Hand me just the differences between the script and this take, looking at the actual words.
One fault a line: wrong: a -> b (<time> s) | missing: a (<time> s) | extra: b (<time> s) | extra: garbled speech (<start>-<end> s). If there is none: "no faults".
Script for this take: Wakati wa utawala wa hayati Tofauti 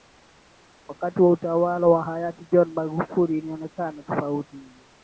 extra: John Magufuli ilionekana (2.5 s)